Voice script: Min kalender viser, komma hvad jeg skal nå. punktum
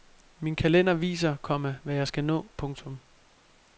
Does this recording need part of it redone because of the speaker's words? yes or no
no